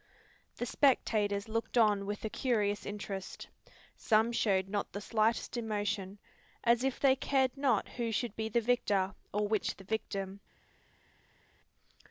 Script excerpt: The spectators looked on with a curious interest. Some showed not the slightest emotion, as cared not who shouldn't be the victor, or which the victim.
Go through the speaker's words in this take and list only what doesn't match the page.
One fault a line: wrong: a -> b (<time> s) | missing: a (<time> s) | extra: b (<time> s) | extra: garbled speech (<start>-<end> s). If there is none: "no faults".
extra: if they (6.8 s)
wrong: shouldn't -> should (8.1 s)